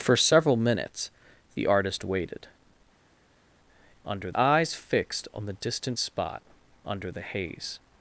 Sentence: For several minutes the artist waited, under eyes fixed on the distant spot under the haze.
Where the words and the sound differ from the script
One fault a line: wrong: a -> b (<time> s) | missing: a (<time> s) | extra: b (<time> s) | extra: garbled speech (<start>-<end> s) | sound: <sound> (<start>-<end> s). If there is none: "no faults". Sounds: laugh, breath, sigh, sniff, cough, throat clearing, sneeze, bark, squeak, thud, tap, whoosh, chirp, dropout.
no faults